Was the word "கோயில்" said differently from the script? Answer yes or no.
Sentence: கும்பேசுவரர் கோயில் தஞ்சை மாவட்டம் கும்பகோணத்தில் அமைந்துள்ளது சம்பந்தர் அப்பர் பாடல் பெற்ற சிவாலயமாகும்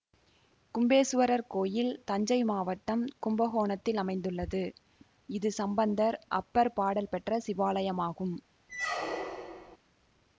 no